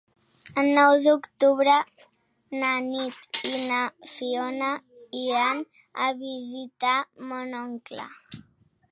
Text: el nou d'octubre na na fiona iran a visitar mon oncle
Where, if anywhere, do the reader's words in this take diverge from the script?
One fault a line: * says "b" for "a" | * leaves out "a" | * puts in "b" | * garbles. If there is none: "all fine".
* puts in "nit i"